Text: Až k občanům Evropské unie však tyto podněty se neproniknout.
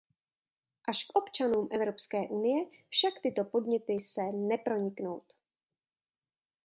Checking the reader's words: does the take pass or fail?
pass